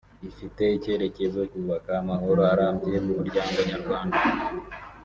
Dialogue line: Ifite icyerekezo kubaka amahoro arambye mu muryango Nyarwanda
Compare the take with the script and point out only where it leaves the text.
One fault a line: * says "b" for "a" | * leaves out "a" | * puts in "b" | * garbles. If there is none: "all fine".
all fine